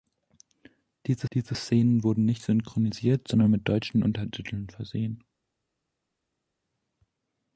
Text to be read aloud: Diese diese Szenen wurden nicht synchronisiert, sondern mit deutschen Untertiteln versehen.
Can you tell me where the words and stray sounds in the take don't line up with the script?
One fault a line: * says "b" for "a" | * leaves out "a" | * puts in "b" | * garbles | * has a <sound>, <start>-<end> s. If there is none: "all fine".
all fine